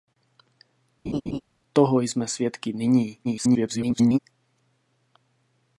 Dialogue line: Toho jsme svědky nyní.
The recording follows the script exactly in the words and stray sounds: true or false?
false